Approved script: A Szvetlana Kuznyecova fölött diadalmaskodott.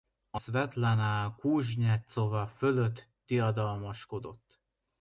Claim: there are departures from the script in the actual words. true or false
false